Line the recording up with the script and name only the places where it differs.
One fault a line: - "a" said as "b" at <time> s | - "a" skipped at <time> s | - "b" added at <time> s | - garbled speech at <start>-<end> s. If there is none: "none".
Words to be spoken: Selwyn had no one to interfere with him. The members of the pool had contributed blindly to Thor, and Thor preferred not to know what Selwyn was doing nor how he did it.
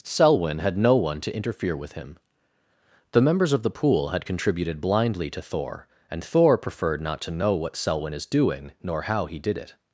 - "was" said as "is" at 8.1 s